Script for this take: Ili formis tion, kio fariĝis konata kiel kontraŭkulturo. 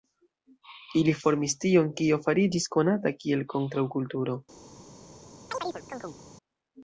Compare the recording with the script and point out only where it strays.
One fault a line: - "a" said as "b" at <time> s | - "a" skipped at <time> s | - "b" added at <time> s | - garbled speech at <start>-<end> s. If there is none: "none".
none